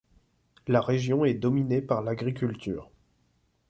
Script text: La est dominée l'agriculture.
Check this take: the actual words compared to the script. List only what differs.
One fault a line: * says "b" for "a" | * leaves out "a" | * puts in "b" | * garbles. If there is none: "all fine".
* puts in "région"
* puts in "par"